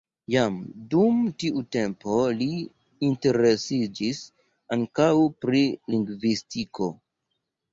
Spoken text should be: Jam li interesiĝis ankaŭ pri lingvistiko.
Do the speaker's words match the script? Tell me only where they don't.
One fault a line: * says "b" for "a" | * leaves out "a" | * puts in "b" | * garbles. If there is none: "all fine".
* puts in "dum tiu tempo"